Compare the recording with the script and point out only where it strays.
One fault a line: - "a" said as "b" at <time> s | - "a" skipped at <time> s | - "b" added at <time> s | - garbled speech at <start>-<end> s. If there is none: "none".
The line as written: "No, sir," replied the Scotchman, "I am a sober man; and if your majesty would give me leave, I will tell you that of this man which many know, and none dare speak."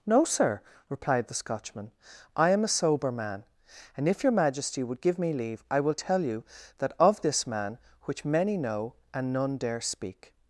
none